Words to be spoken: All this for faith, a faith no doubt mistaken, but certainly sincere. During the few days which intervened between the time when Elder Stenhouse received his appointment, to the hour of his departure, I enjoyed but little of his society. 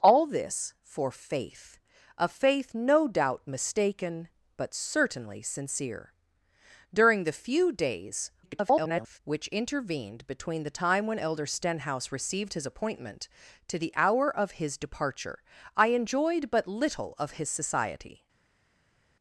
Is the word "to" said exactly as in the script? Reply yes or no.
yes